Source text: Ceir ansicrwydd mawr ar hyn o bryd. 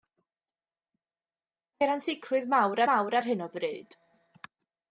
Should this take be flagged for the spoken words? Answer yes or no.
yes